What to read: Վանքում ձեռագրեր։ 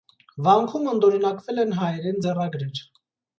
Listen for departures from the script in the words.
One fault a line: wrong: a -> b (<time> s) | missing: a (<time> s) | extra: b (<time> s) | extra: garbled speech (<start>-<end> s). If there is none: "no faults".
extra: ընդօրինակվել են հայերեն (0.9 s)